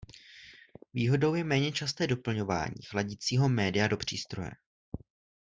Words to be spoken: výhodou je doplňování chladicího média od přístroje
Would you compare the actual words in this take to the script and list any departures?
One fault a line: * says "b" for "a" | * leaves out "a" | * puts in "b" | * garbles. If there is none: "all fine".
* puts in "méně časté"
* says "do" for "od"